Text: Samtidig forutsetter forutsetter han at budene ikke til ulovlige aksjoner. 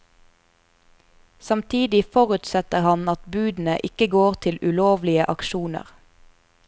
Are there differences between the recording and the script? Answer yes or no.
yes